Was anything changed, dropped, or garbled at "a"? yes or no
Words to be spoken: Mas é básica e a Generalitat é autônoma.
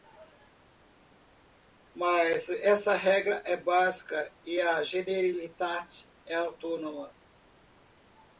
no